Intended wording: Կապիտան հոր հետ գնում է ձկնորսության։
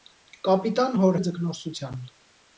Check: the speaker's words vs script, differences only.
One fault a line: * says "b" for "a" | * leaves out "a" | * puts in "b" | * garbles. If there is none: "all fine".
* leaves out "հետ գնում"